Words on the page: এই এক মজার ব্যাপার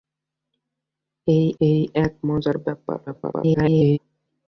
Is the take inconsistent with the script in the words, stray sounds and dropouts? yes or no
yes